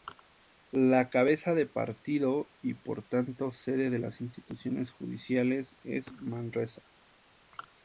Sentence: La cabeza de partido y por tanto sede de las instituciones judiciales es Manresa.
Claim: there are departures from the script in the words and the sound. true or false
false